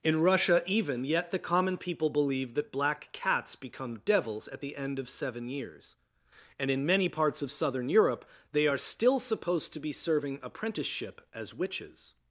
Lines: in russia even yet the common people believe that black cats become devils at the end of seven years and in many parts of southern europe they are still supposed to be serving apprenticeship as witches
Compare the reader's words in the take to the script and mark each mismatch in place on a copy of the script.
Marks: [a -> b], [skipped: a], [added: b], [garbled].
in russia even yet the common people believe that black cats become devils at the end of seven years and in many parts of southern europe they are still supposed to be serving apprenticeship as witches